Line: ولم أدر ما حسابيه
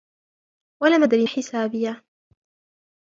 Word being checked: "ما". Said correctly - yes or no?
no